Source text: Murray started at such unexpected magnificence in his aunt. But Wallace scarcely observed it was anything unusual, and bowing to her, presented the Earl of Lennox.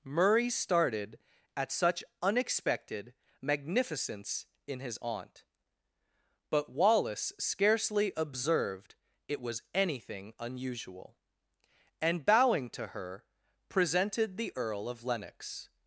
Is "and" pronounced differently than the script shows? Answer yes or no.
no